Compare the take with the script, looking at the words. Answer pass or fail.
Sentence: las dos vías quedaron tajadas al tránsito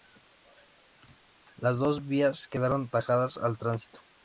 pass